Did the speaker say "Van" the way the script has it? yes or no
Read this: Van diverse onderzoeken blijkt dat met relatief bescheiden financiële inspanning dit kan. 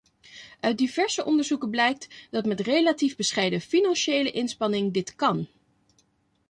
no